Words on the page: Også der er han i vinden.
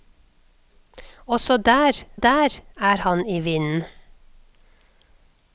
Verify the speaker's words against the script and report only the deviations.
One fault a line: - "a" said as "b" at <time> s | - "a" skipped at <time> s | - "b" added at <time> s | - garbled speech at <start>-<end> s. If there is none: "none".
- "der" added at 2.1 s